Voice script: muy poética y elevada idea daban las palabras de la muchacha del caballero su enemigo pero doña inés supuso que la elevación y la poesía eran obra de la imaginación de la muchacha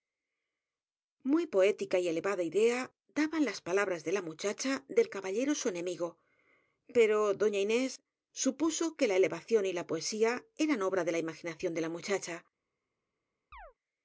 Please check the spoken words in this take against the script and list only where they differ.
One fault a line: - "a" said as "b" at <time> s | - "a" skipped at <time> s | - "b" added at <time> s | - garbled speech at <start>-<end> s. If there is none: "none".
none